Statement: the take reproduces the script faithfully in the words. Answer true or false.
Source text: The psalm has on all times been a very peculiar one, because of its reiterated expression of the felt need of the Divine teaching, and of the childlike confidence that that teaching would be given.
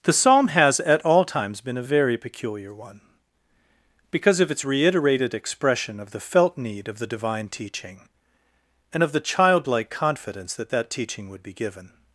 false